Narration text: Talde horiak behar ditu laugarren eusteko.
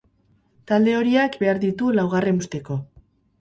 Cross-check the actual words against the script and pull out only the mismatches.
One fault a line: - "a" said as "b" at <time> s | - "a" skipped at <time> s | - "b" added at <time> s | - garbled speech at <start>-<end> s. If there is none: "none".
none